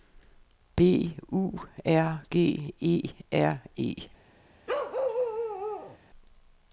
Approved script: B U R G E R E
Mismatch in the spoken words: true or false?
false